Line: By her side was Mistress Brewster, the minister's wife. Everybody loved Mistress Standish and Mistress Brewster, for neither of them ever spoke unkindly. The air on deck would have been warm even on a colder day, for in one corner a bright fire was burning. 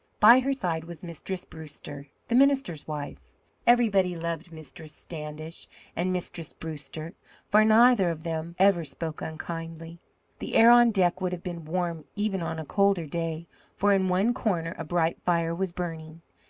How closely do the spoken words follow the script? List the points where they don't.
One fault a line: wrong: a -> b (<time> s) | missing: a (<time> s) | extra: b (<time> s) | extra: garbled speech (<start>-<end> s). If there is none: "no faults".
no faults